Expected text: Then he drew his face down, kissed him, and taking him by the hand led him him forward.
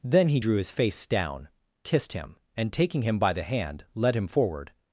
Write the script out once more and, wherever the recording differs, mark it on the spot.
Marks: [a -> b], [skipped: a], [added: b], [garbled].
Then he drew his face down, kissed him, and taking him by the hand led him [skipped: him] forward.